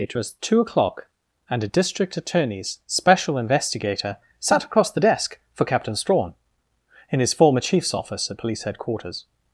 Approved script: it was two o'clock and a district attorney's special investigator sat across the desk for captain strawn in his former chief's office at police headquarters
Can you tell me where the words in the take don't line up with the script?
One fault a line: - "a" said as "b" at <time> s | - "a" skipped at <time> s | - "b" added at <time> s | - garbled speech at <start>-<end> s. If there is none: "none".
none